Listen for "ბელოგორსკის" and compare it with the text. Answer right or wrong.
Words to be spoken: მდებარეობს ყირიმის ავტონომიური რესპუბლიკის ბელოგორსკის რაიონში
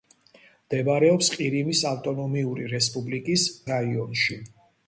wrong